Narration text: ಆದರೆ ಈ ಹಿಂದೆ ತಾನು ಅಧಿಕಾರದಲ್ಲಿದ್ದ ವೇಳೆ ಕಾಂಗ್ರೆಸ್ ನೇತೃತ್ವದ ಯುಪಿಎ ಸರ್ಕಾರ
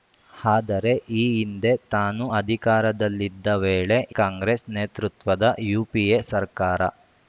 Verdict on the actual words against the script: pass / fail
pass